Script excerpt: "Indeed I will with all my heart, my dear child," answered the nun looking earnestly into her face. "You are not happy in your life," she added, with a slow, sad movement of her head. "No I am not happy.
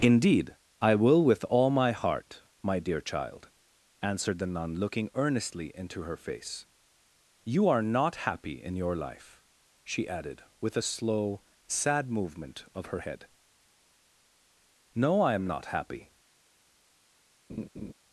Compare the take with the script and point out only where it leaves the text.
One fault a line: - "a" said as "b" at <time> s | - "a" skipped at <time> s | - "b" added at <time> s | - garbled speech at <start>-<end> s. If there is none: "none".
none